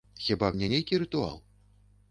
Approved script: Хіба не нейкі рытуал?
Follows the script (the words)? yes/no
yes